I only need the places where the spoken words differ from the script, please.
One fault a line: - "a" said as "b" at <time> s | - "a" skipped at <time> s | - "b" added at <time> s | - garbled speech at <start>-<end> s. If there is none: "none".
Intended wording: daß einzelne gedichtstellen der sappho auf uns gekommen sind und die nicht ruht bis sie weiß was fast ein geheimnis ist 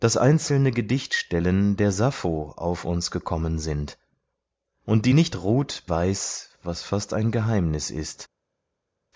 - "bis sie" skipped at 5.8 s